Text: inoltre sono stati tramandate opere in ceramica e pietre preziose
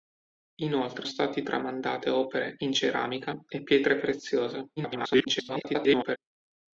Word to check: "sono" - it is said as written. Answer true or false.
false